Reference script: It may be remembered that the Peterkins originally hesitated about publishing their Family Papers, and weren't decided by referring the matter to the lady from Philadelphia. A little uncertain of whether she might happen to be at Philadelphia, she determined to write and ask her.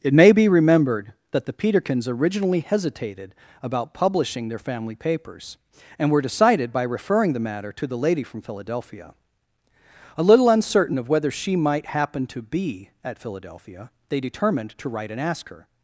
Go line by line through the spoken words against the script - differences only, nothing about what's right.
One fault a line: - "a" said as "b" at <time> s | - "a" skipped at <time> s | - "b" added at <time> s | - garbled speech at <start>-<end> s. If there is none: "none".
- "weren't" said as "were" at 6.1 s
- "she" said as "they" at 14.1 s